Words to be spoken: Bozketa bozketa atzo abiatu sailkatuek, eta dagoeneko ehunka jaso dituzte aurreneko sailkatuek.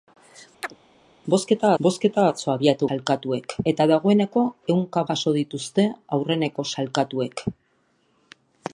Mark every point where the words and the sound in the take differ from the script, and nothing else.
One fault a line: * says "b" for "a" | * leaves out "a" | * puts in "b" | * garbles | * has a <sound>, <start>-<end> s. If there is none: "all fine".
* has a chirp, 0.6-0.8 s